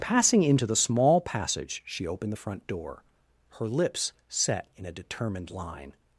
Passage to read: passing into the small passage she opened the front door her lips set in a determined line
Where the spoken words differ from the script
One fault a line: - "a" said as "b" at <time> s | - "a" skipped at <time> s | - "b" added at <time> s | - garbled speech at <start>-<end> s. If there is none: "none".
none